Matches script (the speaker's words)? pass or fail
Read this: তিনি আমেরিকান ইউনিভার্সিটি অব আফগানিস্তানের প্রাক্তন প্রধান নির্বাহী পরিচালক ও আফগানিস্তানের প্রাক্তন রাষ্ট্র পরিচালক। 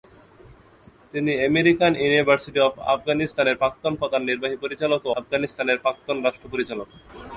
pass